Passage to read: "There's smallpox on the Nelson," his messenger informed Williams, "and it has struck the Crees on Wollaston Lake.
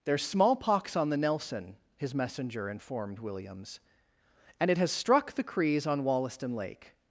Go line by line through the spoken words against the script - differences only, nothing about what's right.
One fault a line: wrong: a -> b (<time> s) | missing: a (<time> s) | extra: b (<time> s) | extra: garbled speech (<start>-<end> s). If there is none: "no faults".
no faults